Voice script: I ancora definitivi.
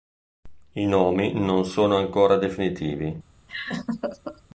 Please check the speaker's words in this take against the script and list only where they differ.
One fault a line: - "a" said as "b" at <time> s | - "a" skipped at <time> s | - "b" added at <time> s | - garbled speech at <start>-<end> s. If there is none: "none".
- "nomi non sono" added at 0.8 s